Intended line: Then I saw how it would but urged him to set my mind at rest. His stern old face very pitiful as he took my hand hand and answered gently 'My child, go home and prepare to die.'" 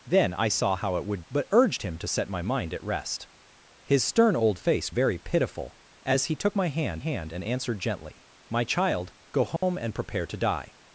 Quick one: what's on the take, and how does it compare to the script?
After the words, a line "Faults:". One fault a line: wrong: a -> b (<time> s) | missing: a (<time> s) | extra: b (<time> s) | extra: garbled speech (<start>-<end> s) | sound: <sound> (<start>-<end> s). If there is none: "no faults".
Then I saw how it would but urged him to set my mind at rest. His stern old face very pitiful as he took my hand hand and answered gently 'My child, go home and prepare to die.'"
Faults:
sound: dropout (9.6-9.6 s)